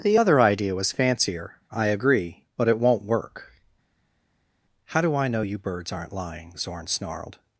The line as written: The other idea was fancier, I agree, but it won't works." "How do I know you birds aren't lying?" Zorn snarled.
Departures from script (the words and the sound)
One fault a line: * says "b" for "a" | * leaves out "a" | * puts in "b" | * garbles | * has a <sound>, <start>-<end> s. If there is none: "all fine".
* says "work" for "works"